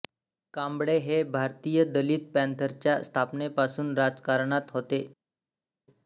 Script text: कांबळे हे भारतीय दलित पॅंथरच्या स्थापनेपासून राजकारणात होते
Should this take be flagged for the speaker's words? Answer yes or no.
no